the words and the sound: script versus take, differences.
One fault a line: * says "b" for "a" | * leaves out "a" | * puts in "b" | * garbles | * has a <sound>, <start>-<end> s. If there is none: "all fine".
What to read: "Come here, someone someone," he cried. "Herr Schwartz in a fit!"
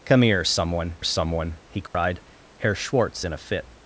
* has a dropout, 1.9-1.9 s